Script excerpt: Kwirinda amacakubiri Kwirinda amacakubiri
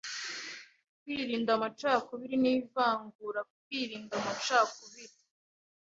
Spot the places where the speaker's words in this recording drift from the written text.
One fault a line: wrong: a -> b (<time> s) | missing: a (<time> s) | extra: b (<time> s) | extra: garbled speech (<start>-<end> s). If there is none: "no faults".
extra: n'ivangura (2.4 s)